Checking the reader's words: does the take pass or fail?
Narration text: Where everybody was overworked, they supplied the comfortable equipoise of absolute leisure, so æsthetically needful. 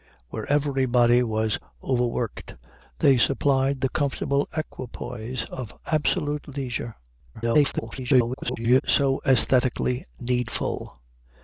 fail